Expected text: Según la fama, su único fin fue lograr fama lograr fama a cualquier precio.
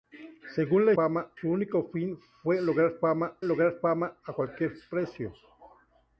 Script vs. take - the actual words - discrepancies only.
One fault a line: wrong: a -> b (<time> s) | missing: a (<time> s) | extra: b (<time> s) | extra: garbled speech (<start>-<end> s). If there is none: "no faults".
no faults